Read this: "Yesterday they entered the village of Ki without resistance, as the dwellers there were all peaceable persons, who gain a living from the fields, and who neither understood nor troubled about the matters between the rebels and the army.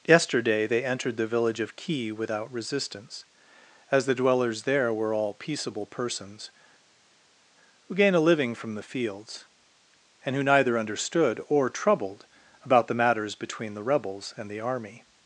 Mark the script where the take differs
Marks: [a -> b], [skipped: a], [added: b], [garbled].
"Yesterday they entered the village of Ki without resistance, as the dwellers there were all peaceable persons, who gain a living from the fields, and who neither understood [nor -> or] troubled about the matters between the rebels and the army.